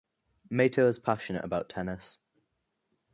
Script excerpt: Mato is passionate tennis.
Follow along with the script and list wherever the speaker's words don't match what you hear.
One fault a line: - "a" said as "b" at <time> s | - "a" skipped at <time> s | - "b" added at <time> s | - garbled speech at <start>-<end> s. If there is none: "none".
- "about" added at 1.4 s